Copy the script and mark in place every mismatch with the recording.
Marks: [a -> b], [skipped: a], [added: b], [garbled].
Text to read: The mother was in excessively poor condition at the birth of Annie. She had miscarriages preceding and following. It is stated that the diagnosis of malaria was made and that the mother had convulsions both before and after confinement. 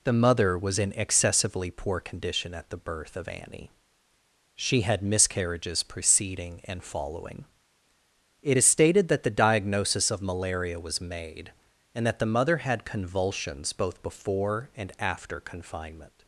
The mother was in excessively poor condition at the birth of Annie. She had miscarriages preceding and following. It is stated that the diagnosis of malaria was made and that the mother had convulsions both before and after confinement.